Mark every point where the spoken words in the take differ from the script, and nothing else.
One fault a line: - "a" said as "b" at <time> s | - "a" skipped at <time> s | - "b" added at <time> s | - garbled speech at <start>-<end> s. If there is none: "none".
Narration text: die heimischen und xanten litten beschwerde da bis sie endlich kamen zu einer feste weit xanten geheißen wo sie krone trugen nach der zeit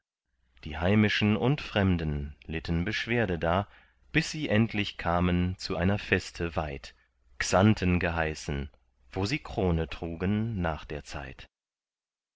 - "xanten" said as "fremden" at 1.6 s